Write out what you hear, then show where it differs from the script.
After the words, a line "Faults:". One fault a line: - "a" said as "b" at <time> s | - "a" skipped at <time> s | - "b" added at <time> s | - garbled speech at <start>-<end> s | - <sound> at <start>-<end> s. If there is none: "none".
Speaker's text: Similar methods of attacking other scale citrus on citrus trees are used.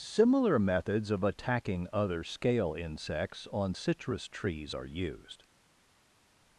Similar methods of attacking other scale insects on citrus trees are used.
Faults:
- "citrus" said as "insects" at 2.7 s